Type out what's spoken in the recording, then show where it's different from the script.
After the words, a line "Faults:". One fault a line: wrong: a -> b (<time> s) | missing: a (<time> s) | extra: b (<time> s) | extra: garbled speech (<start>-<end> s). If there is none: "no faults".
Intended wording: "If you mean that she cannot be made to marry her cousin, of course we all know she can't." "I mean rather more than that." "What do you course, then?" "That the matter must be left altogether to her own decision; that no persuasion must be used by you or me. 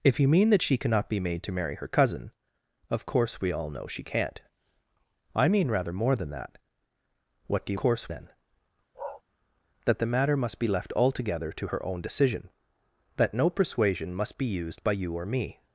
"If you mean that she cannot be made to marry her cousin, of course we all know she can't." "I mean rather more than that." "What do you course, then?" "That the matter must be left altogether to her own decision; that no persuasion must be used by you or me.
Faults:
no faults